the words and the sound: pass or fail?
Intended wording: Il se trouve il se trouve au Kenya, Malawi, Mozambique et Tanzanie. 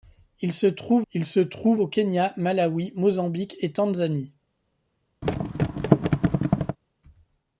fail